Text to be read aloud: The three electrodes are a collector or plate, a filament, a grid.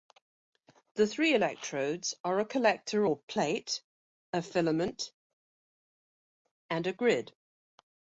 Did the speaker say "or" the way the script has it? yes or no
yes